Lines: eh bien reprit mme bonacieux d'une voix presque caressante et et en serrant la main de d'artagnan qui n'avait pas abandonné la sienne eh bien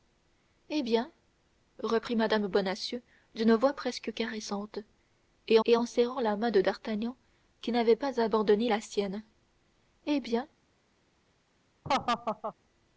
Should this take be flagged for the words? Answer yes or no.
no